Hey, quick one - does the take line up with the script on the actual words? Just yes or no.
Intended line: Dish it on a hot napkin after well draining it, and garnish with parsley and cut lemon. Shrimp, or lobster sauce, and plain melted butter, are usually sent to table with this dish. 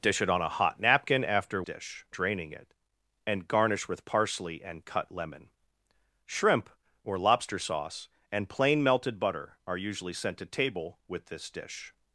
no